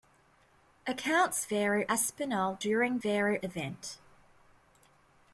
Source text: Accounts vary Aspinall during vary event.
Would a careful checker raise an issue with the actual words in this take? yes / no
no